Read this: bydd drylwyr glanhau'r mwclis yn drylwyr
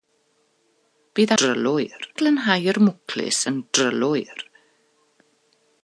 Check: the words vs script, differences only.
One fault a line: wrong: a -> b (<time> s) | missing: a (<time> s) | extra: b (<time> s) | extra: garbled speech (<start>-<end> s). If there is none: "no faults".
no faults